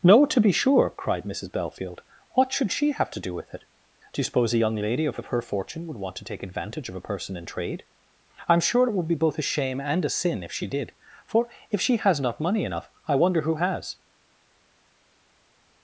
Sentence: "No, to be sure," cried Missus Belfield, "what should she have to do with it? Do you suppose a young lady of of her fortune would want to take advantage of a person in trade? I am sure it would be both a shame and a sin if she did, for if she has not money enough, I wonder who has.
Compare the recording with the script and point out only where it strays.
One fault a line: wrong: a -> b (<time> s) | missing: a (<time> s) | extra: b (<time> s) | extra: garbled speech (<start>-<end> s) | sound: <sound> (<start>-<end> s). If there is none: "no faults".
no faults